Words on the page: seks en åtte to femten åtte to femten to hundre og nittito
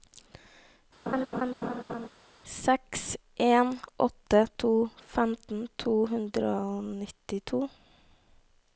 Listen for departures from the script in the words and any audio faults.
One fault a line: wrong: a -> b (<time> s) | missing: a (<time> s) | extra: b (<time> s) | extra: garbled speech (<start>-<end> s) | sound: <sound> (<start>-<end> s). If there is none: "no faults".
sound: laugh (1.1-2.1 s)
missing: åtte to femten (5.7 s)